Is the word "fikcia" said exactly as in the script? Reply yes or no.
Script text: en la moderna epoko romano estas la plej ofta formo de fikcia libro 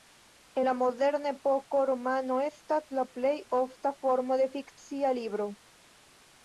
yes